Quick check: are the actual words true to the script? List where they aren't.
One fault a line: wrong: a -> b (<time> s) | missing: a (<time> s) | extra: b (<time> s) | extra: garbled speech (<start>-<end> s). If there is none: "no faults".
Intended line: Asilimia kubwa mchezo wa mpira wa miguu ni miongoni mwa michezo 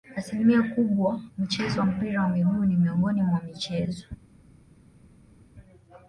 no faults